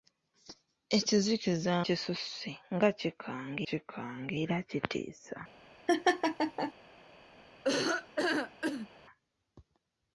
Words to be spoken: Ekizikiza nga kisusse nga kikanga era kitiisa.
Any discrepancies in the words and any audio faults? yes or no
yes